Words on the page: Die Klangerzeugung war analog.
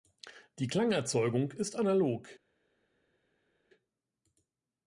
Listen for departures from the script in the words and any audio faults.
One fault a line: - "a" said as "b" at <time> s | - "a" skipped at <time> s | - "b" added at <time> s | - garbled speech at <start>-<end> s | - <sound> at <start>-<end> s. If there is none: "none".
- "war" said as "ist" at 1.5 s